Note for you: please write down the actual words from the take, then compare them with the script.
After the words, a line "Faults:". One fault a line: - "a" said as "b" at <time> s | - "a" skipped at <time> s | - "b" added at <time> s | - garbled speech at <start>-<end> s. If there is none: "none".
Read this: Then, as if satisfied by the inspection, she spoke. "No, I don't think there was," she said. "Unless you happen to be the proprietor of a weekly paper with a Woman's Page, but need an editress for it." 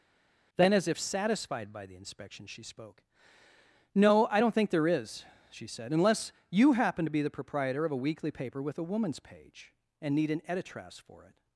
Then, as if satisfied by the inspection, she spoke. "No, I don't think there is," she said. "Unless you happen to be the proprietor of a weekly paper with a Woman's Page, and need an editress for it."
Faults:
- "was" said as "is" at 4.9 s
- "but" said as "and" at 10.0 s